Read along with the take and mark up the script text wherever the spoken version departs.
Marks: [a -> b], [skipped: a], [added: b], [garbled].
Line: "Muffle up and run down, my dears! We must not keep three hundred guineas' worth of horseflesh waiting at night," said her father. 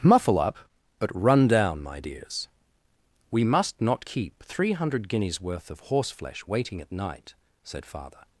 "Muffle up [and -> but] run down, my dears! We must not keep three hundred guineas' worth of horseflesh waiting at night," said [skipped: her] father.